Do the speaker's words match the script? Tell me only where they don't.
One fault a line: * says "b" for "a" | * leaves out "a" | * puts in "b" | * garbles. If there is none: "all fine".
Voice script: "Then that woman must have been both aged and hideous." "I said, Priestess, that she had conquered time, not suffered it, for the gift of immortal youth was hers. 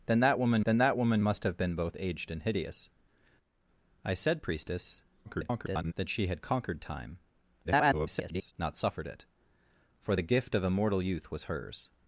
* puts in "then that woman"
* garbles
* garbles